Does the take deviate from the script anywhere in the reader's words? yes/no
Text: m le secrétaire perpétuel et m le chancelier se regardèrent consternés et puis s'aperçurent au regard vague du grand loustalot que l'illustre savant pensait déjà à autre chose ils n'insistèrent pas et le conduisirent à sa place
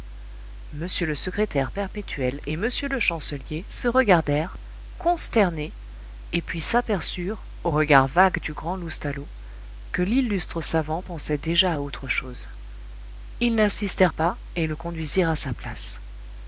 no